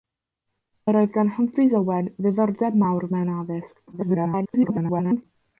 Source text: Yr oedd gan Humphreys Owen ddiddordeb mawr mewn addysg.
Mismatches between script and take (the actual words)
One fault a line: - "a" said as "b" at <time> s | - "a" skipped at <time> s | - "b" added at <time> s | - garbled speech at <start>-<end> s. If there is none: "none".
- garbled speech at 3.9-5.2 s